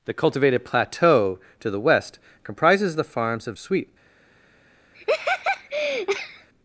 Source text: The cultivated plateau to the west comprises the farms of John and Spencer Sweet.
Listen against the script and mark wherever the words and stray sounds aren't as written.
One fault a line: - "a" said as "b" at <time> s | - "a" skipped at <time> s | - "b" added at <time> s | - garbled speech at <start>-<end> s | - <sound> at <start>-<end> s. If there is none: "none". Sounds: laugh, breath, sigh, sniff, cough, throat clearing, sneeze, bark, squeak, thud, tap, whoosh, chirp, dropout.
- "John and Spencer" skipped at 3.6 s
- laugh at 4.9-6.5 s